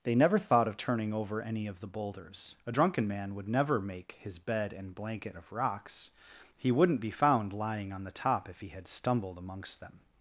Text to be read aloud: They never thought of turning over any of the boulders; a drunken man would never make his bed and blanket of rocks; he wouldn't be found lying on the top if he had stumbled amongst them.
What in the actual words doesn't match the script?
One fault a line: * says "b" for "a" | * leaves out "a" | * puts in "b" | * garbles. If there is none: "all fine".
all fine